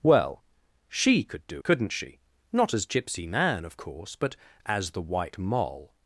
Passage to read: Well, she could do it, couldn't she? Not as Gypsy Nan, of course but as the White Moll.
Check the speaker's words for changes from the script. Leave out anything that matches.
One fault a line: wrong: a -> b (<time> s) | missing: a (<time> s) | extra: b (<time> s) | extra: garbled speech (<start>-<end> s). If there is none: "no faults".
missing: it (1.6 s)